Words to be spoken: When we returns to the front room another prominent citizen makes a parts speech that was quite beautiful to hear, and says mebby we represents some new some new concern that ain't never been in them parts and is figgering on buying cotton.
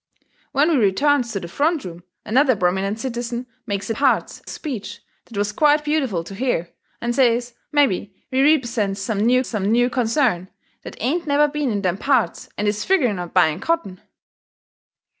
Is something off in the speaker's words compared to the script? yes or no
no